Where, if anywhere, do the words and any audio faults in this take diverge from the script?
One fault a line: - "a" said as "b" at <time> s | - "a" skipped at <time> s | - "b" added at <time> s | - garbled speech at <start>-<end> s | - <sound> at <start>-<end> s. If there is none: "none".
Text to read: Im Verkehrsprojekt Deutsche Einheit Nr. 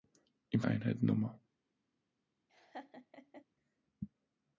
- "Verkehrsprojekt Deutsche" skipped at 0.6 s
- laugh at 2.5-3.4 s